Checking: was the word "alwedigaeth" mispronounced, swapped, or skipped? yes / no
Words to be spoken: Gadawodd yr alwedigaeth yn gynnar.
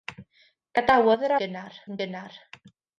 yes